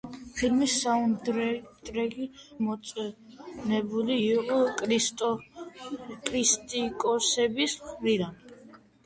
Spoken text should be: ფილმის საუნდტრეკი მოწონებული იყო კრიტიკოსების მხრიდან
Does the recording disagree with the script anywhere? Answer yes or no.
no